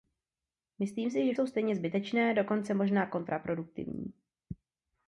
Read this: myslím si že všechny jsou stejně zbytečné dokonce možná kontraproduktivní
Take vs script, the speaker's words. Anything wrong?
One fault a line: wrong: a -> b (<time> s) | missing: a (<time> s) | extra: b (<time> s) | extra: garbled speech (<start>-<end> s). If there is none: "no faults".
missing: všechny (1.3 s)